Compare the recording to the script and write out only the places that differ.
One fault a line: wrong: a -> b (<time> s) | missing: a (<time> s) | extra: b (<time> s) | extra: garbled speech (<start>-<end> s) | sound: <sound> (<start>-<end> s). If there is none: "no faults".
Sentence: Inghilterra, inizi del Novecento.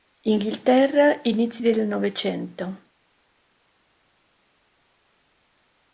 no faults